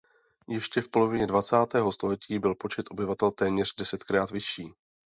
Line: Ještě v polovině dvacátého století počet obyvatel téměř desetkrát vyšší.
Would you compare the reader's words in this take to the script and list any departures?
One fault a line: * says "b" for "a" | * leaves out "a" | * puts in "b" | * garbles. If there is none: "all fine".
* puts in "byl"